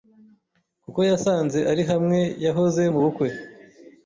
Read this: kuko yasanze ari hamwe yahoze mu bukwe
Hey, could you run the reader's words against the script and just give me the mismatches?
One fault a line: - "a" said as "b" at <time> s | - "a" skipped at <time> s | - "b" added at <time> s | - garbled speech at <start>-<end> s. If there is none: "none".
none